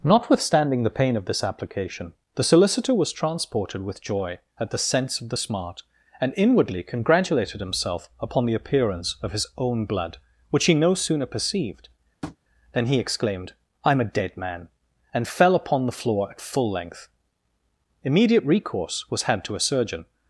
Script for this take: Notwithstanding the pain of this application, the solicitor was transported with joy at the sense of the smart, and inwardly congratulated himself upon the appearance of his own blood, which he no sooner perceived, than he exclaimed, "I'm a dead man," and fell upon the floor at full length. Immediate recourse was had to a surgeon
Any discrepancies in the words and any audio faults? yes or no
yes